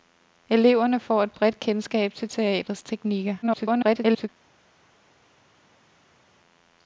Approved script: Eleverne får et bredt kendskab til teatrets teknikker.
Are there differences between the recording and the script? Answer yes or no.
yes